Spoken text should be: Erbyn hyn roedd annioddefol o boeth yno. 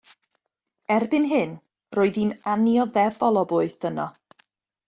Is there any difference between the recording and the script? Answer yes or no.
yes